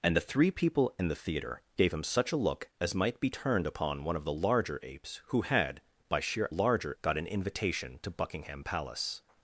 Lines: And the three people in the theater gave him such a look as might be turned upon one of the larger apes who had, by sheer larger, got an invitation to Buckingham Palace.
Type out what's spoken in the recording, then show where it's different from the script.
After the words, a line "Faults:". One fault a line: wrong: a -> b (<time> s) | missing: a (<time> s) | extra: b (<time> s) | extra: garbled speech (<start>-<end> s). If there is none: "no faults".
And the three people in the theater gave him such a look as might be turned upon one of the larger apes who had, by sheer larger, got an invitation to Buckingham Palace.
Faults:
no faults